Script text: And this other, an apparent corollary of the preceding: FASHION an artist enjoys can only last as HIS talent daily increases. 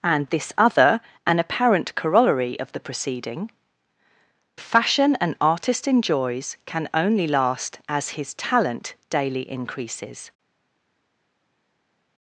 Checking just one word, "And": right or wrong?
right